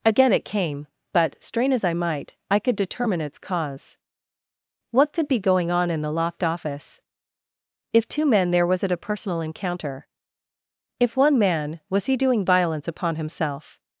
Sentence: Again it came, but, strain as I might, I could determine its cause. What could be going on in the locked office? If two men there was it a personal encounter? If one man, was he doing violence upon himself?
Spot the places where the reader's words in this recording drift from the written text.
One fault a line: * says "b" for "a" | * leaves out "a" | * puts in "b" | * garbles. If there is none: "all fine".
all fine